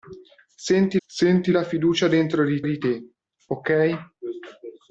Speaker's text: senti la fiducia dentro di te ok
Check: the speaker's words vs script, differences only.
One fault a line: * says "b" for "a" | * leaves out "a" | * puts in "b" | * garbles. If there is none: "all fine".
* puts in "senti"
* puts in "di"